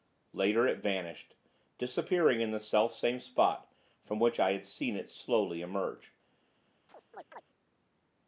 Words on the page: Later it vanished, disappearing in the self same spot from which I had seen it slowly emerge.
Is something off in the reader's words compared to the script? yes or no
no